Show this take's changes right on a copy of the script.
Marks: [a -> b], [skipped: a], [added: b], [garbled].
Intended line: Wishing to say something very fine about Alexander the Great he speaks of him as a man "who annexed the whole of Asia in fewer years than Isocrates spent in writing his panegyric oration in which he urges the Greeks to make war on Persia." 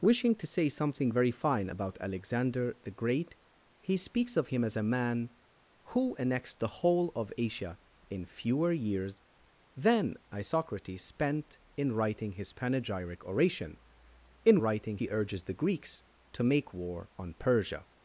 Wishing to say something very fine about Alexander the Great he speaks of him as a man "who annexed the whole of Asia in fewer years than Isocrates spent in writing his panegyric oration in [which -> writing] he urges the Greeks to make war on Persia."